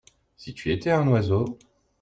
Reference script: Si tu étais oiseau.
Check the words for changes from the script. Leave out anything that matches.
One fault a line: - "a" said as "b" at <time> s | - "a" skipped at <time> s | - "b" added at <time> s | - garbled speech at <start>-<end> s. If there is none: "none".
- "un" added at 0.9 s